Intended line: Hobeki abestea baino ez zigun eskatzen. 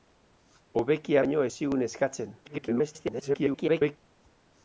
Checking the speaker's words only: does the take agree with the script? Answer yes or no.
no